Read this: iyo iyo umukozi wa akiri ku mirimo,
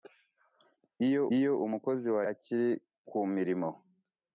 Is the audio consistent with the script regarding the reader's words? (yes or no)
yes